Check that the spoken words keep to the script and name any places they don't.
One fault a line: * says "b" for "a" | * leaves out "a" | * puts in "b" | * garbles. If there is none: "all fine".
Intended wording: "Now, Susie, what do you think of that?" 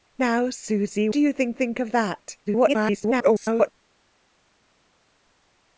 * leaves out "what"
* puts in "think"
* garbles